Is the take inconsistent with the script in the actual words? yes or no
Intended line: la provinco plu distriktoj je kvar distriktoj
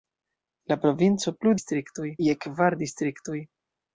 no